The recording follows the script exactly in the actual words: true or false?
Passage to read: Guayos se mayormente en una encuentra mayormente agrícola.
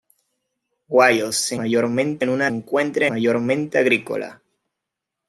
true